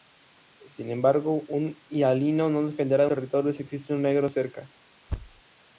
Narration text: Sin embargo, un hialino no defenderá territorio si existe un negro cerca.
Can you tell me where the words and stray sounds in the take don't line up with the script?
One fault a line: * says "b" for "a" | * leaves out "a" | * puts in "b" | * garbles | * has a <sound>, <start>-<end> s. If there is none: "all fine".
* has a thud, 5.1-5.4 s